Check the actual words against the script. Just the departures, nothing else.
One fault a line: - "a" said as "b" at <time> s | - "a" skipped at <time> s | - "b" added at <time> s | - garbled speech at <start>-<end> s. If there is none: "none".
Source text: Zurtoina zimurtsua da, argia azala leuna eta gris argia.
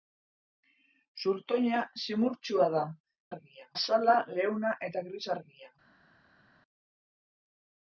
none